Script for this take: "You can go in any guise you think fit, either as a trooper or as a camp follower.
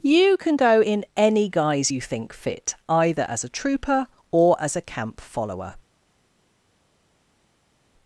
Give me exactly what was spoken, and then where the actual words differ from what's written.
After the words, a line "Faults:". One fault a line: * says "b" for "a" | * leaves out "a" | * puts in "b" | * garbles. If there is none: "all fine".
"You can go in any guise you think fit, either as a trooper or as a camp follower.
Faults:
all fine